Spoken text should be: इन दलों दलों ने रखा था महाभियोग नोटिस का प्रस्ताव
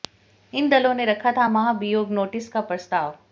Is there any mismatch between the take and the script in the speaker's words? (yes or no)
yes